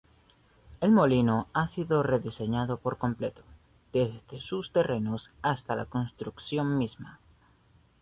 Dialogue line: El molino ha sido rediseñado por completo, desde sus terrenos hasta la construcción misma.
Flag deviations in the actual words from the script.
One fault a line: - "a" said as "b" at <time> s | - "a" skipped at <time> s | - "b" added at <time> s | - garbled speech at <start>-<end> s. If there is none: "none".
none